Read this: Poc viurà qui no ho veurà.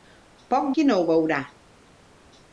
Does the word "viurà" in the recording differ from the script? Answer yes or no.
yes